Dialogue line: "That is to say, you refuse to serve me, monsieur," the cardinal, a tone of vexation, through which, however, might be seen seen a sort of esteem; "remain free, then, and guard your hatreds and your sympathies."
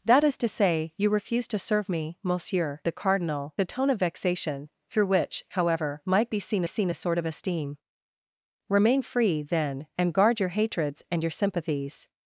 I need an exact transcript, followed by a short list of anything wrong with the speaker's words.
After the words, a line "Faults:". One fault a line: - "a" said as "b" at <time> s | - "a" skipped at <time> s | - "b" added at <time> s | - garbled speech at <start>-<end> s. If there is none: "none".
"That is to say, you refuse to serve me, monsieur," the cardinal, a tone of vexation, through which, however, might be seen seen a sort of esteem; "remain free, then, and guard your hatreds and your sympathies."
Faults:
none